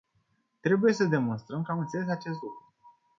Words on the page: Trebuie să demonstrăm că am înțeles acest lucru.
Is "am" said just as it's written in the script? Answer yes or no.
yes